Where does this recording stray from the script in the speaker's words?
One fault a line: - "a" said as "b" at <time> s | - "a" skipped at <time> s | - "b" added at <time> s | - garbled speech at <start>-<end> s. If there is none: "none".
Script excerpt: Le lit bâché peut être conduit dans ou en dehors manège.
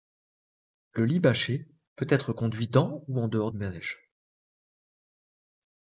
none